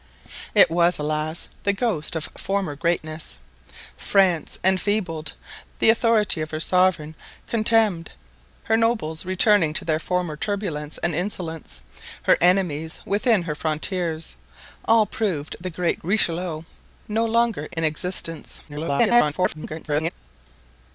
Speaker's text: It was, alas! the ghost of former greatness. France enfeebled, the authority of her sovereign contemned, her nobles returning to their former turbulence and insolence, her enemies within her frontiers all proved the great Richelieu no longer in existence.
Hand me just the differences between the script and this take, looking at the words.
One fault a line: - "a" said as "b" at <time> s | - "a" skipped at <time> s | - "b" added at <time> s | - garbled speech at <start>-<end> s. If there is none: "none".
- garbled speech at 18.7-20.1 s